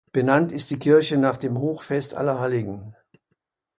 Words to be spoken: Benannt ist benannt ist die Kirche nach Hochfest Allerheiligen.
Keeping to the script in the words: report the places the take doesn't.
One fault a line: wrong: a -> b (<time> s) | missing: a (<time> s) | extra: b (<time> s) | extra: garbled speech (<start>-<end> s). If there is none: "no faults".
missing: benannt ist (0.7 s)
extra: dem (1.4 s)